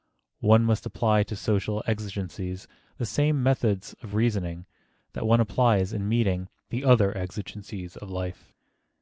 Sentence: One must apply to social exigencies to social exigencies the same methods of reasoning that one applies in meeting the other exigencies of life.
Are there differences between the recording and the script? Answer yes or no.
yes